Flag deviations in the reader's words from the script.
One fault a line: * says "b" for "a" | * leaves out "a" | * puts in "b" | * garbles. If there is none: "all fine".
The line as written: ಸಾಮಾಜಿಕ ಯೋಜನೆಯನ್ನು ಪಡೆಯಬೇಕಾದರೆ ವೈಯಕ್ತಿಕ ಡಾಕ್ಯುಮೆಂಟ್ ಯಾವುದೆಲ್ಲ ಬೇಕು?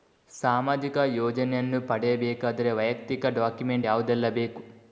all fine